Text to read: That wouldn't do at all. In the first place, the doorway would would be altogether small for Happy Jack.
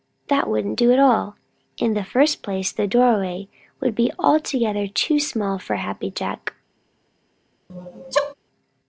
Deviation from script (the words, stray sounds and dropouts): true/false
true